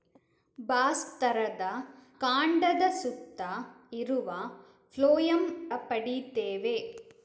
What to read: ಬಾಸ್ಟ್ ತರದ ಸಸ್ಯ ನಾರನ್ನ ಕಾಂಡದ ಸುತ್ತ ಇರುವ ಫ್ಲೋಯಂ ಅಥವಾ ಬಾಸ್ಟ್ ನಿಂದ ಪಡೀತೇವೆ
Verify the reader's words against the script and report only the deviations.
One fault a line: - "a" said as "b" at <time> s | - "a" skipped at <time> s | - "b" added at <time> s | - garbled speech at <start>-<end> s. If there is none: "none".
- "ಸಸ್ಯ ನಾರನ್ನ" skipped at 1.6 s
- "ಅಥವಾ ಬಾಸ್ಟ್ ನಿಂದ" skipped at 5.7 s